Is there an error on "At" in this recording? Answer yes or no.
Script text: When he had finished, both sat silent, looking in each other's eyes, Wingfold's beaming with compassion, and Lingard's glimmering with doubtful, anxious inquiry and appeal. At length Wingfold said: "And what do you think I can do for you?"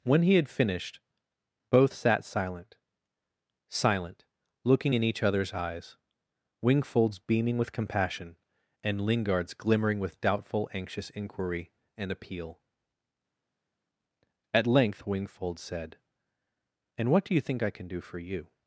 no